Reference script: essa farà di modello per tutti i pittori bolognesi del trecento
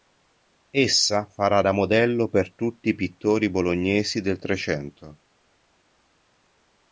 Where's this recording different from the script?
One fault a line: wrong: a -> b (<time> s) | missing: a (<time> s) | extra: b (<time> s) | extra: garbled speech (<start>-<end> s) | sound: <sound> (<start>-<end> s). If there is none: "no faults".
wrong: di -> da (1.6 s)